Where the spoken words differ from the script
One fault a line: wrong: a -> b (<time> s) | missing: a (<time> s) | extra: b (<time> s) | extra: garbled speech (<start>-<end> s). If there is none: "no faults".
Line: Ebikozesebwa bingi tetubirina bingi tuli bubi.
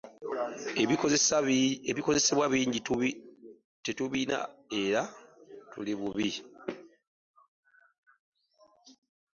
wrong: bingi -> era (4.8 s)